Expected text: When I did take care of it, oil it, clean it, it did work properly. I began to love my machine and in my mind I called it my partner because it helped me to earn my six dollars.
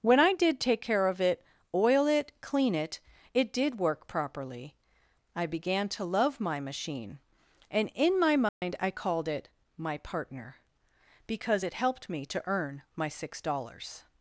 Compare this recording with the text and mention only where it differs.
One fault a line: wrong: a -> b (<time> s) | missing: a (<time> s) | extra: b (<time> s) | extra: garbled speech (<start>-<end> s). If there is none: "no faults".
no faults